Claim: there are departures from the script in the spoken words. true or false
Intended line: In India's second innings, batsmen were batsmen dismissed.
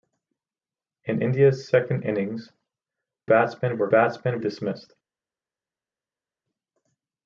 false